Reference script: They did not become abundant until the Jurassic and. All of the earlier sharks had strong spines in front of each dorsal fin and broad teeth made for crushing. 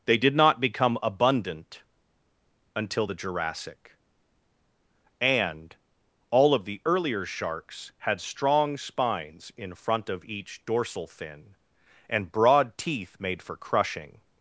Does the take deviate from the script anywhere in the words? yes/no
no